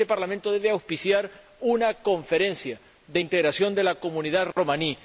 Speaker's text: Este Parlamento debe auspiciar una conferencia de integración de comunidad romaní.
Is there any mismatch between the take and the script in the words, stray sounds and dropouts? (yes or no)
yes